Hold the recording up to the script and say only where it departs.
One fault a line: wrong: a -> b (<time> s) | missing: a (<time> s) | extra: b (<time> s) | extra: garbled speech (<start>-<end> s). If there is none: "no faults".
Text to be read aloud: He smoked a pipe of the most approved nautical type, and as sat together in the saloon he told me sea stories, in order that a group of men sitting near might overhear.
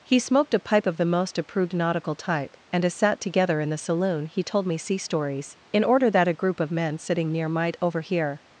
no faults